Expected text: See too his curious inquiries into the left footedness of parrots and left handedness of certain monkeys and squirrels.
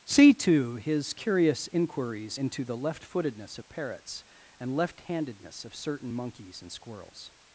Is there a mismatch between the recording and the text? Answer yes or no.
no